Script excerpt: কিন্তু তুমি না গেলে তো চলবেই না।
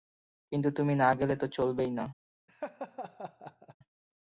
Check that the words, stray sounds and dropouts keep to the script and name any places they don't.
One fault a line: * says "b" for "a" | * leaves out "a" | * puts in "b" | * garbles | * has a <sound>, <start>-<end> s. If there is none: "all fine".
* has a laugh, 2.5-3.8 s